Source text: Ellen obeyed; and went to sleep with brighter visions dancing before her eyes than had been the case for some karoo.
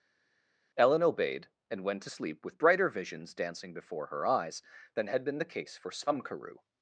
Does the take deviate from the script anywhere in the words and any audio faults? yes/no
no